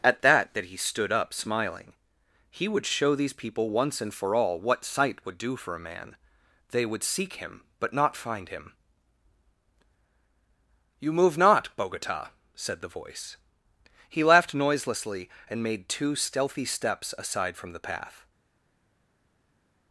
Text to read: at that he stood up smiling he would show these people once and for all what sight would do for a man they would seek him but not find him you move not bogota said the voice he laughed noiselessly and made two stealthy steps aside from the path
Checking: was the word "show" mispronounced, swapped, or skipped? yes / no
no